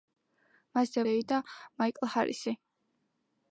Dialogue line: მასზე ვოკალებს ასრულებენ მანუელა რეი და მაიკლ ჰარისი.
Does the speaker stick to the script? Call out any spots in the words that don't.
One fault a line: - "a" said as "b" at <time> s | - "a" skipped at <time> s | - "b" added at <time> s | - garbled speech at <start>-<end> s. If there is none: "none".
- "ვოკალებს ასრულებენ მანუელა" skipped at 1.0 s